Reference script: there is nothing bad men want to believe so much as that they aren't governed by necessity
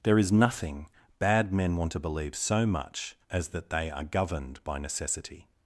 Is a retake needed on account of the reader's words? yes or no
yes